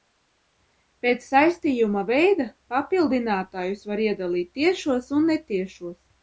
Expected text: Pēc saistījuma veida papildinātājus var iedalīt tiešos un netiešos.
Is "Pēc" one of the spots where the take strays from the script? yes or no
no